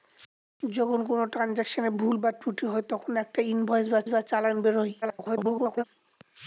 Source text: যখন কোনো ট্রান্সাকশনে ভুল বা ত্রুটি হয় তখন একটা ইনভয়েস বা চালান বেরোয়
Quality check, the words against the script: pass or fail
fail